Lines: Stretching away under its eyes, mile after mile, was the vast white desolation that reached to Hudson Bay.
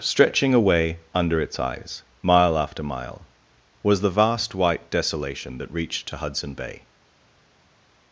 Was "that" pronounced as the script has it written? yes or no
yes